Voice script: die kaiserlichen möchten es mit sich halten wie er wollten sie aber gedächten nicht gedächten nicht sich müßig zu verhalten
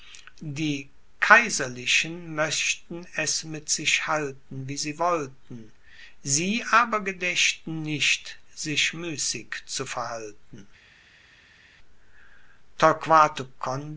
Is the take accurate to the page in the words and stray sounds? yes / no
no